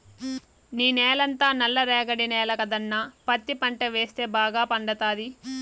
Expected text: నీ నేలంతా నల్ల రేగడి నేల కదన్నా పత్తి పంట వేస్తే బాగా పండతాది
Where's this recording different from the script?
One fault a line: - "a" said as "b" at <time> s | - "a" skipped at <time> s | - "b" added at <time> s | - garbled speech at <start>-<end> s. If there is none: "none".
none